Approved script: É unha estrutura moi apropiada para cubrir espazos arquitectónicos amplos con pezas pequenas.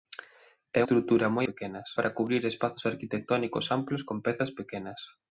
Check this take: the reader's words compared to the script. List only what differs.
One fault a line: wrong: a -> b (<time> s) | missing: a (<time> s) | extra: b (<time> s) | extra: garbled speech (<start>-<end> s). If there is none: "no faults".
missing: unha (0.8 s)
wrong: apropiada -> pequenas (1.5 s)